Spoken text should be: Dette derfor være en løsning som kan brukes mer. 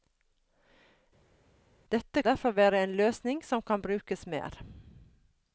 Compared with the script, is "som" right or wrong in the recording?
right